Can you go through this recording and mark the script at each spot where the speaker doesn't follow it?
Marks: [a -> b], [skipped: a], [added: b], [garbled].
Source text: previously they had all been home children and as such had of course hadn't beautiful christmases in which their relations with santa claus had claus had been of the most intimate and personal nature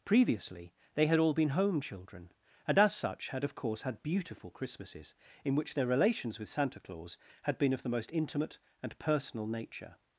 previously they had all been home children and as such had of course [hadn't -> had] beautiful christmases in which their relations with santa claus had [skipped: claus had] been of the most intimate and personal nature